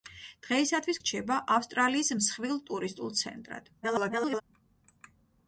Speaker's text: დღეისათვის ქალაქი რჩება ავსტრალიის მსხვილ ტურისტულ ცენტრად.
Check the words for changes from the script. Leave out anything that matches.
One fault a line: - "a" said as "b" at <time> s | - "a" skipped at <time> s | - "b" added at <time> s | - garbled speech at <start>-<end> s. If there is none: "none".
- "ქალაქი" skipped at 1.0 s
- garbled speech at 3.8-4.4 s